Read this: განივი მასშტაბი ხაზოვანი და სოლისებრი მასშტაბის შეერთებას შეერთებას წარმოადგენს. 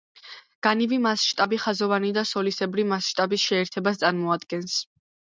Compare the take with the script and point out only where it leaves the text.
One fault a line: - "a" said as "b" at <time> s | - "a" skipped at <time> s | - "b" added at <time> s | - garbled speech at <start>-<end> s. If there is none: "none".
- "შეერთებას" skipped at 4.0 s